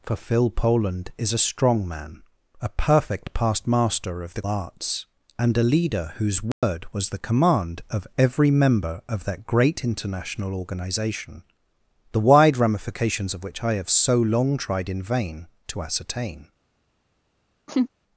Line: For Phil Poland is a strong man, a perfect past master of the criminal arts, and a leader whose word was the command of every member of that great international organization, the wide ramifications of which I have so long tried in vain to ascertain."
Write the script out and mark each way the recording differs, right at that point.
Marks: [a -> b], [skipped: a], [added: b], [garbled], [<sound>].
For Phil Poland is a strong man, a perfect past master of the [skipped: criminal] arts, and a leader whose word [dropout] was the command of every member of that great international organization, the wide ramifications of which I have so long tried in vain to ascertain." [laugh]